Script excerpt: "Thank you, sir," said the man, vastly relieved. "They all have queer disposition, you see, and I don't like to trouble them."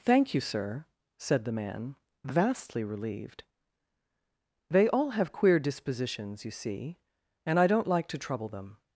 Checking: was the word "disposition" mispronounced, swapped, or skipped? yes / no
yes